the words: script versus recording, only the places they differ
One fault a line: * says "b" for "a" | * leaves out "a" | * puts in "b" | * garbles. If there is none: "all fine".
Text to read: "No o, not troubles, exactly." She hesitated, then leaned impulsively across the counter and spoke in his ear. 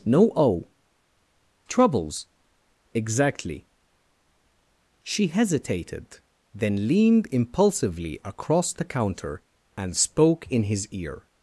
* leaves out "not"